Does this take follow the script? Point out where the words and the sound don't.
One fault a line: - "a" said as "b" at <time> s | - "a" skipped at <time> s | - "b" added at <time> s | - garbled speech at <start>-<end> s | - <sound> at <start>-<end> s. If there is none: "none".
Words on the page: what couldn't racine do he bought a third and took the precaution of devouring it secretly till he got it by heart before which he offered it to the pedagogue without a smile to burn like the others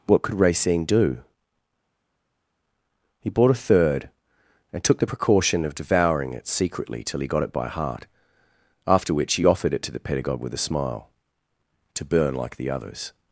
- "couldn't" said as "could" at 0.2 s
- "before" said as "after" at 8.9 s
- "without" said as "with" at 10.4 s